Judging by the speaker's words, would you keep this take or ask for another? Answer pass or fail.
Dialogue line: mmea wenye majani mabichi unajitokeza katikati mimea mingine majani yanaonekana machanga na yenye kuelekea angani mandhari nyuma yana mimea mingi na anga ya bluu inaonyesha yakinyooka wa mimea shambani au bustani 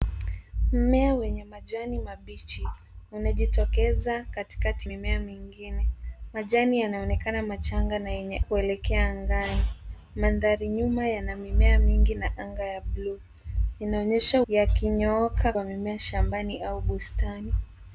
pass